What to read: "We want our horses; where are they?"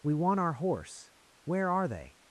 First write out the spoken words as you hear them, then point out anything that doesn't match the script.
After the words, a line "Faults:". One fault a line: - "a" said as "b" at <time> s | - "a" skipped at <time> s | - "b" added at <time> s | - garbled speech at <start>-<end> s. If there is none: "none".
"We want our horse; where are they?"
Faults:
- "horses" said as "horse" at 0.5 s